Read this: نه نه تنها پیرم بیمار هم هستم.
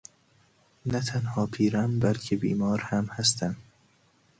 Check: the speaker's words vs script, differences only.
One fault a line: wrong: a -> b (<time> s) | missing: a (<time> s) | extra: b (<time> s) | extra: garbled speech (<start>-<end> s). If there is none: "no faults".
missing: نه (1.0 s)
extra: بلکه (2.0 s)